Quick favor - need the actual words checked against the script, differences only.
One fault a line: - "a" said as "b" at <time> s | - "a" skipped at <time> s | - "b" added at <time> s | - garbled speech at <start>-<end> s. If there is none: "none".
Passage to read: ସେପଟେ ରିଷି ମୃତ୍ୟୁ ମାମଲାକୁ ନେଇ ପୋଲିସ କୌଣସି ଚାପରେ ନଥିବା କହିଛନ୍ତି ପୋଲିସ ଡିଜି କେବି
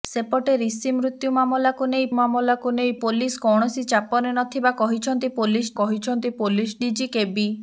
- "ମାମଲାକୁ ନେଇ" added at 2.2 s
- "କହିଛନ୍ତି ପୋଲିସ" added at 5.8 s